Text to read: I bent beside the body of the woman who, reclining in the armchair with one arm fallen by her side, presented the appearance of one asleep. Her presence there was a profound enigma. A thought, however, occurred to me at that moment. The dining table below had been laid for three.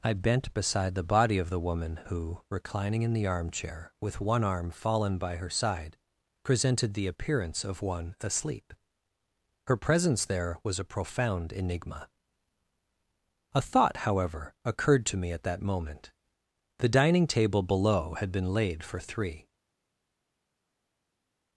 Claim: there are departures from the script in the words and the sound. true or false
false